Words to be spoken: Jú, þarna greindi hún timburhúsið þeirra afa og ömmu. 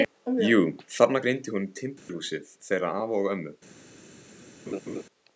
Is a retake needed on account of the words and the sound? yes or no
yes